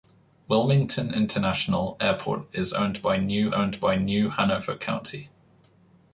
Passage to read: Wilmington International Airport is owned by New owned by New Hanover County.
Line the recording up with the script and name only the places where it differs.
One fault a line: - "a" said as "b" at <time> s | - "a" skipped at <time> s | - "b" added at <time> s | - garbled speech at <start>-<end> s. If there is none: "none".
none